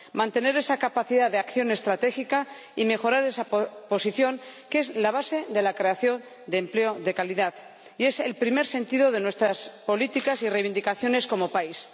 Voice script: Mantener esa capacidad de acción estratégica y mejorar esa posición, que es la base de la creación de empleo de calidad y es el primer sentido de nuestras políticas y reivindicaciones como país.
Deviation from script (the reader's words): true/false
false